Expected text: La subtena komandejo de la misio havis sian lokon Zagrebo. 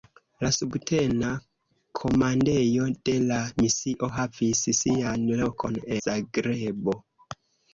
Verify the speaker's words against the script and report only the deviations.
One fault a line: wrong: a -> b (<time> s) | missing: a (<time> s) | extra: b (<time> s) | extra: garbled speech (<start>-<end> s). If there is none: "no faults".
no faults